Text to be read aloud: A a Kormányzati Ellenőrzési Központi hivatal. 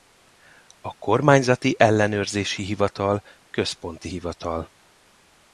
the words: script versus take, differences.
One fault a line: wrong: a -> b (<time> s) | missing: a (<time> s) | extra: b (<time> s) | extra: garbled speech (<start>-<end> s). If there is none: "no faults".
missing: a (0.9 s)
extra: Hivatal (2.6 s)